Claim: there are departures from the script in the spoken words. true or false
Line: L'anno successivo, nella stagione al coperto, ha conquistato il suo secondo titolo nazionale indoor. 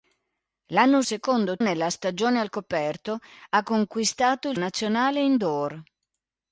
true